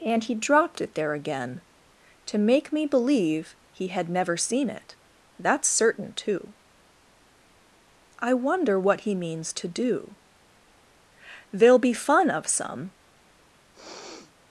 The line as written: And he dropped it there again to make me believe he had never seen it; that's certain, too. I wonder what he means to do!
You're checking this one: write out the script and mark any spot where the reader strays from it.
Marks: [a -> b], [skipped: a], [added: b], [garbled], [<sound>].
And he dropped it there again to make me believe he had never seen it; that's certain, too. I wonder what he means to do! [added: There'll be fun of some] [sniff]